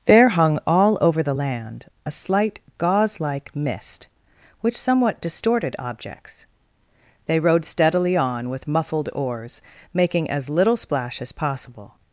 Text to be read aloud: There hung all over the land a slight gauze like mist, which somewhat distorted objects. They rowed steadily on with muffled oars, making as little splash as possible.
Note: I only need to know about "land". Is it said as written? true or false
true